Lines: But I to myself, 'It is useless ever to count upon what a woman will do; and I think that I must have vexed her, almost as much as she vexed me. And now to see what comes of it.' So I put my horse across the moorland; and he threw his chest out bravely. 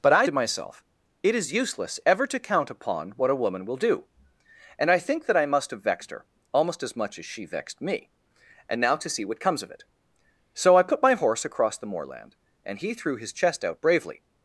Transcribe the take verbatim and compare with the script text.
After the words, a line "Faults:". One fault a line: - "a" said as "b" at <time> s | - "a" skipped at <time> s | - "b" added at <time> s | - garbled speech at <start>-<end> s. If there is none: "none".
But I to myself, 'It is useless ever to count upon what a woman will do; and I think that I must have vexed her, almost as much as she vexed me. And now to see what comes of it.' So I put my horse across the moorland; and he threw his chest out bravely.
Faults:
none